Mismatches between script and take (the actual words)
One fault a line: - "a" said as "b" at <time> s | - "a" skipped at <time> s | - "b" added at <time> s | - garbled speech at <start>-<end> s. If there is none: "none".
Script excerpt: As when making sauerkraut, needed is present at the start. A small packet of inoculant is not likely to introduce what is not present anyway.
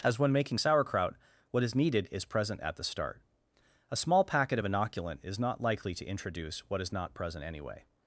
- "what is" added at 1.5 s